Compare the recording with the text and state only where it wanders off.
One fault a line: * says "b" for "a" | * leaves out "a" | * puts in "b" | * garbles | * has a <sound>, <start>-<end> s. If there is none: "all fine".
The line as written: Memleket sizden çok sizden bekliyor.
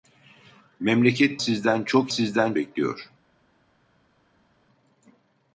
all fine